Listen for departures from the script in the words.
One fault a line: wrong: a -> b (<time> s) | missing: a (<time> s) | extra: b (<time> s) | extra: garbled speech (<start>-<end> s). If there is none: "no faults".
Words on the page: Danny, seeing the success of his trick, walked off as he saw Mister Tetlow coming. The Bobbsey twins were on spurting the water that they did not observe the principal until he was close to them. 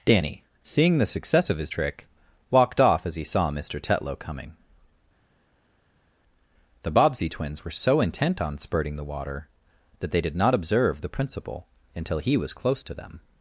extra: so intent (7.7 s)